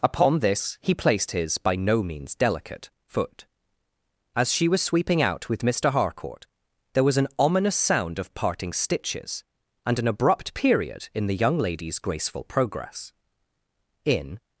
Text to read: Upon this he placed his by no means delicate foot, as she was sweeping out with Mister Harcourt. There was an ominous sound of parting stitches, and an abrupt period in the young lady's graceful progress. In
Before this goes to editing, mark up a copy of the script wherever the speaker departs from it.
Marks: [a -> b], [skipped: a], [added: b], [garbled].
Upon this he placed his by no means delicate foot, as she was sweeping out with Mister Harcourt. There was an ominous sound of parting stitches, and an abrupt period in the young lady's graceful progress. In